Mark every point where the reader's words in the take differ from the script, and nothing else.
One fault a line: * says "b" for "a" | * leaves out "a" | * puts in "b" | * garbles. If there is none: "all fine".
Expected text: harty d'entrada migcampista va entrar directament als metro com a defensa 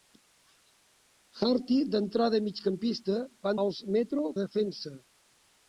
* leaves out "entrar directament"
* leaves out "com"